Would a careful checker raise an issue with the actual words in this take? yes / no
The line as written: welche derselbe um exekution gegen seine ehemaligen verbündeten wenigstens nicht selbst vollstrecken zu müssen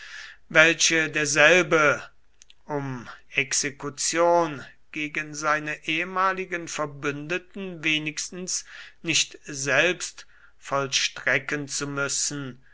no